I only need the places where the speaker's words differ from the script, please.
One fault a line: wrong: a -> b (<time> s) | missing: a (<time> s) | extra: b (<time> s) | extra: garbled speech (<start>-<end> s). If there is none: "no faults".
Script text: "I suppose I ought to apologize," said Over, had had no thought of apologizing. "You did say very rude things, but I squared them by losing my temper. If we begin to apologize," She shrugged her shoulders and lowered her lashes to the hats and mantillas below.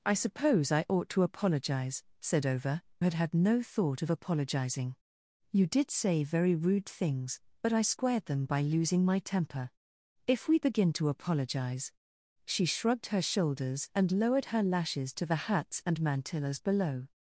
no faults